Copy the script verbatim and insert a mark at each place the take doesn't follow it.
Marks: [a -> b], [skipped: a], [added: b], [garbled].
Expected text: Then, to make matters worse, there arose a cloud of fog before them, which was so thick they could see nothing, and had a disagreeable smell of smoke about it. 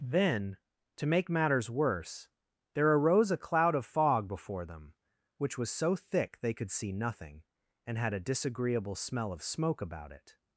Then, to make matters worse, there arose a cloud of fog before them, which was so thick they could see nothing, and had a disagreeable smell of smoke about it.